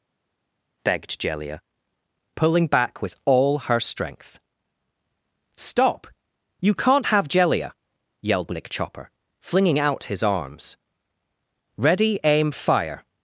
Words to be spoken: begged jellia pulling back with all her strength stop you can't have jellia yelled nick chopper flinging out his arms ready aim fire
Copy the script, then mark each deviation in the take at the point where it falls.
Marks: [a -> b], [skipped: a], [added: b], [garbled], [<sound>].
begged jellia pulling back with all her strength stop you can't have jellia yelled nick chopper flinging out his arms ready aim fire